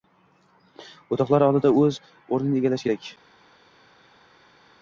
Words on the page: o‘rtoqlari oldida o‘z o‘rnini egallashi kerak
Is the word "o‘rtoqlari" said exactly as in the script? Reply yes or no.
yes